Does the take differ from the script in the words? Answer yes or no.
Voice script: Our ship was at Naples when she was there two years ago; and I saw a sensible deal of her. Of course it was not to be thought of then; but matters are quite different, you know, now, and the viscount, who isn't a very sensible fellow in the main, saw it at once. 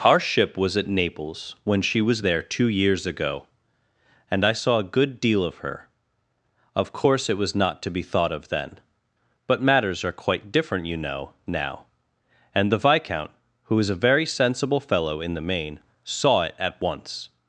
yes